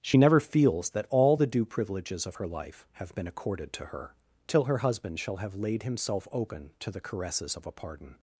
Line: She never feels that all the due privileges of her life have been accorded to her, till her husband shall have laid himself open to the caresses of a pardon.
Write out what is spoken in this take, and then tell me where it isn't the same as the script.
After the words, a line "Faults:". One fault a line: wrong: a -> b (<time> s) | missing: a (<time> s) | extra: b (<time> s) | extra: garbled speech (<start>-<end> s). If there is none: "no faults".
She never feels that all the due privileges of her life have been accorded to her, till her husband shall have laid himself open to the caresses of a pardon.
Faults:
no faults